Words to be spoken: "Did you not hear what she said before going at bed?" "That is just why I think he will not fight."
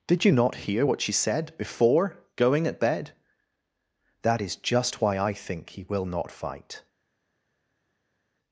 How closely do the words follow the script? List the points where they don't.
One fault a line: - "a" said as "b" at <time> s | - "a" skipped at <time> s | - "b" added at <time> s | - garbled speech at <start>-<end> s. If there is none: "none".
none